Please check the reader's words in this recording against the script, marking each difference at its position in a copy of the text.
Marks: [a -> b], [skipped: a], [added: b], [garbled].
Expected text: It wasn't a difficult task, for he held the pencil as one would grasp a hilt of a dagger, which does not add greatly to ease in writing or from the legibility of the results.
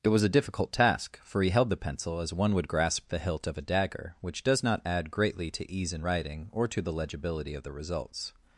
It [wasn't -> was] a difficult task, for he held the pencil as one would grasp [a -> the] hilt of a dagger, which does not add greatly to ease in writing or [from -> to] the legibility of the results.